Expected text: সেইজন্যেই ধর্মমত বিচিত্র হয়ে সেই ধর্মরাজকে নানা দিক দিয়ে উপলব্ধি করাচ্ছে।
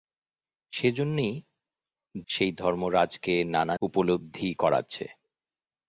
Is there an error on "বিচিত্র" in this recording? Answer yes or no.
yes